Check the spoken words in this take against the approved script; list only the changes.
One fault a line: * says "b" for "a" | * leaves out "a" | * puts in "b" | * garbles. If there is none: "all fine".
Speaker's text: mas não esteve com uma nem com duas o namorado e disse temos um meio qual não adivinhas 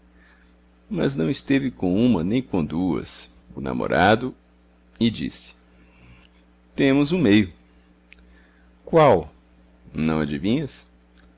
all fine